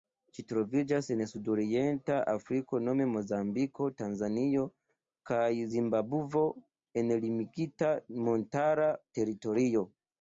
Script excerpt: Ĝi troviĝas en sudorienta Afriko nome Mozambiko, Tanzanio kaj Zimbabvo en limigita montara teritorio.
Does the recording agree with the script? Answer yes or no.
yes